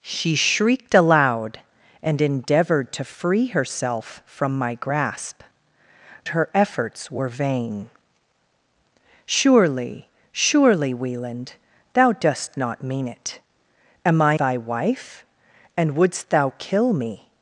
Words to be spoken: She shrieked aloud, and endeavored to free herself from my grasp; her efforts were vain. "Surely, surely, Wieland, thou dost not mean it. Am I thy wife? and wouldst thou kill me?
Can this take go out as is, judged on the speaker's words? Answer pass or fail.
pass